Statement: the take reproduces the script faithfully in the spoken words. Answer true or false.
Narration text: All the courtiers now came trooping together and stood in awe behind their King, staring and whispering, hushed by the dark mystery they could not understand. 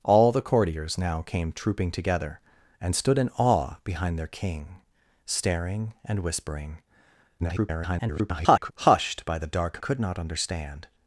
false